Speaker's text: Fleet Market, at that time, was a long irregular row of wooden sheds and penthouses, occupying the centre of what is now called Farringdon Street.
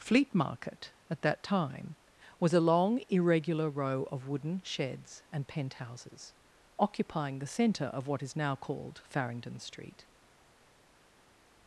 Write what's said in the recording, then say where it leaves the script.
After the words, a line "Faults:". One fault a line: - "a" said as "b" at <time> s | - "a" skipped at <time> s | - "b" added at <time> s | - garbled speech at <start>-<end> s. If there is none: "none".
Fleet Market, at that time, was a long irregular row of wooden sheds and penthouses, occupying the centre of what is now called Farringdon Street.
Faults:
none